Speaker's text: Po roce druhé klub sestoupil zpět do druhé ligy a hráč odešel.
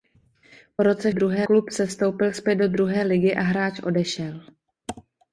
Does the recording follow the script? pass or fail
pass